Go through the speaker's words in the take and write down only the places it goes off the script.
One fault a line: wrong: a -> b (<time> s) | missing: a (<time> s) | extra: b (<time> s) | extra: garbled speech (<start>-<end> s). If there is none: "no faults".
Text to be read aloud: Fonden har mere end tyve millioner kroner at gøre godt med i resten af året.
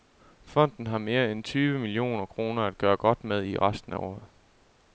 no faults